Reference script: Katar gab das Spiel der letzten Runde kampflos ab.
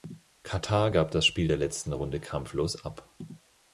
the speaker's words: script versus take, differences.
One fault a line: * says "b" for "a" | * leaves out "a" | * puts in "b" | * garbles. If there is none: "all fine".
all fine